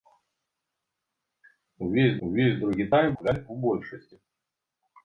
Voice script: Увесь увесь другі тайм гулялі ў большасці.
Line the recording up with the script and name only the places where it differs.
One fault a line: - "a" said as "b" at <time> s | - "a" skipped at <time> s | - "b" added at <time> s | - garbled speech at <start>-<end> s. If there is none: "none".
none